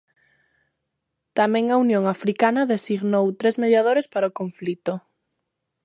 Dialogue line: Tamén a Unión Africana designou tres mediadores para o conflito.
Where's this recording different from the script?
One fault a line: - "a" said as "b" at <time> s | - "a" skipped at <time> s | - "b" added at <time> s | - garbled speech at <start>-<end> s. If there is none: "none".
none